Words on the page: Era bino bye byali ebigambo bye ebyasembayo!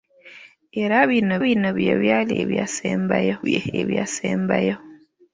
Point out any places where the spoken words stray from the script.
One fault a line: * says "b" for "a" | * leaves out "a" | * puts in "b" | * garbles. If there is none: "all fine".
* puts in "bino"
* says "ebyasembayo" for "ebigambo"